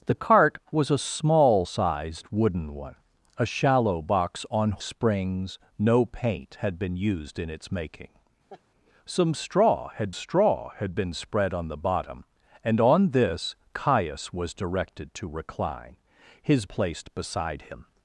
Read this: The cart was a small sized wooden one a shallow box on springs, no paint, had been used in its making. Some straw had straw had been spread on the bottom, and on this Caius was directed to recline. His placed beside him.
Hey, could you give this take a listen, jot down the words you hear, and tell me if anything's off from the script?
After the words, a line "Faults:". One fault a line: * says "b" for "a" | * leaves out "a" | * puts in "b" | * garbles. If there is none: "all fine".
The cart was a small sized wooden one a shallow box on springs, no paint, had been used in its making. Some straw had straw had been spread on the bottom, and on this Caius was directed to recline. His placed beside him.
Faults:
all fine